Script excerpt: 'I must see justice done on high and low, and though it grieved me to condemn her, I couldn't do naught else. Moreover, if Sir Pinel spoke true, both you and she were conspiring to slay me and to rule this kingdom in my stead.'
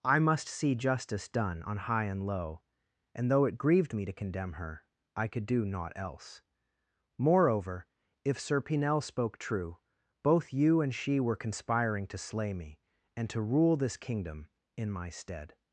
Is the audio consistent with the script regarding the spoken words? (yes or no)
no